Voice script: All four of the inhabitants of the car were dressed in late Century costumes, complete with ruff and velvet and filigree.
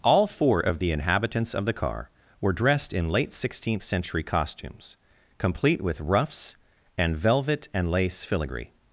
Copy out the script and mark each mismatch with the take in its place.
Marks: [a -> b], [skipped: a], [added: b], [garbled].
All four of the inhabitants of the car were dressed in late [added: Sixteenth] Century costumes, complete with [ruff -> ruffs] and velvet and [added: lace] filigree.